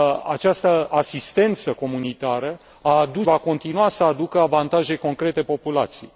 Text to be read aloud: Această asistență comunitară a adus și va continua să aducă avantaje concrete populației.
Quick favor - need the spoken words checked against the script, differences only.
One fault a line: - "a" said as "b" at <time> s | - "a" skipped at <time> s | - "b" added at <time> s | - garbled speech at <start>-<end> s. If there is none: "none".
- "și" skipped at 3.3 s